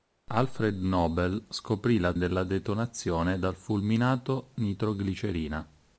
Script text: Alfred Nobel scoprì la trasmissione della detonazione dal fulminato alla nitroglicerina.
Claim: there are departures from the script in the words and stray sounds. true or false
true